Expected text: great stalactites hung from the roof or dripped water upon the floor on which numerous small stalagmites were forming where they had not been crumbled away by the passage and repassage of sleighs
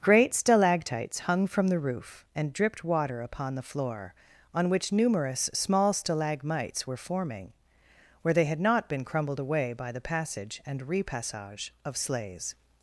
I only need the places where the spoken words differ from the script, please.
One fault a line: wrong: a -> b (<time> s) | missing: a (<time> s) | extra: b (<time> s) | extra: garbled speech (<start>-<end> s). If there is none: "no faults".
wrong: or -> and (2.4 s)